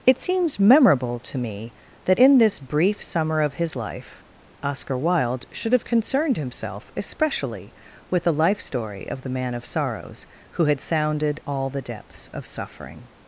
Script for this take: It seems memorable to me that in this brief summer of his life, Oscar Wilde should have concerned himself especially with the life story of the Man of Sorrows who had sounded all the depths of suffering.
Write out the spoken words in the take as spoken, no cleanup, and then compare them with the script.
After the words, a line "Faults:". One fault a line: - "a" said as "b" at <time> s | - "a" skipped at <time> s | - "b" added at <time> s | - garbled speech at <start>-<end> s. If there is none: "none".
It seems memorable to me that in this brief summer of his life, Oscar Wilde should have concerned himself especially with the life story of the Man of Sorrows who had sounded all the depths of suffering.
Faults:
none